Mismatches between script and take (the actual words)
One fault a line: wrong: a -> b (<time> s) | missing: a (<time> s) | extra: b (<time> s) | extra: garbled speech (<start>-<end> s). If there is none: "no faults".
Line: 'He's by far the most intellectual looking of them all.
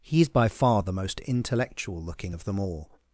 no faults